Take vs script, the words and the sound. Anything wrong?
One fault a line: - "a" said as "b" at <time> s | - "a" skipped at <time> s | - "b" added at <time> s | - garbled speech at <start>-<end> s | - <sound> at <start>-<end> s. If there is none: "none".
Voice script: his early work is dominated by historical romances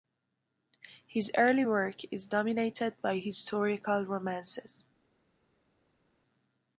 none